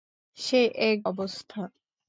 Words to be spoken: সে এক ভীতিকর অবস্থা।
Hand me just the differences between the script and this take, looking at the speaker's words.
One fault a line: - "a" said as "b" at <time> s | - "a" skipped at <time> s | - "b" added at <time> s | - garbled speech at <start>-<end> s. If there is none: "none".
- "ভীতিকর" skipped at 1.0 s